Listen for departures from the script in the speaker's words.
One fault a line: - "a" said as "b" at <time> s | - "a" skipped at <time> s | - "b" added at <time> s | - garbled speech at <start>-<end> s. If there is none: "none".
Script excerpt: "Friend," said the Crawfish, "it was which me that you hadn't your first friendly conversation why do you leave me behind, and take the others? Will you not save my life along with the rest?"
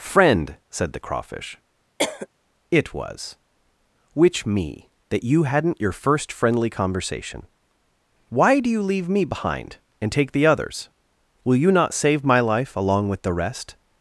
none